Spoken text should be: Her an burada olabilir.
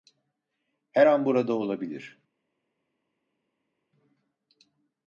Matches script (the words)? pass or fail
pass